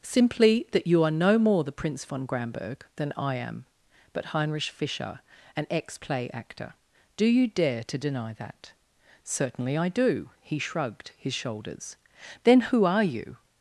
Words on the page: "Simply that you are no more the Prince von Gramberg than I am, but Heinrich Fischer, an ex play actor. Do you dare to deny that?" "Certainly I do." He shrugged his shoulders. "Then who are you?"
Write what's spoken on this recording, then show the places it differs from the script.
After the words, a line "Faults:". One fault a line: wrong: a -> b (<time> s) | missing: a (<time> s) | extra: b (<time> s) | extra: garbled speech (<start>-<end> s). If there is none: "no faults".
"Simply that you are no more the Prince von Gramberg than I am, but Heinrich Fischer, an ex play actor. Do you dare to deny that?" "Certainly I do." He shrugged his shoulders. "Then who are you?"
Faults:
no faults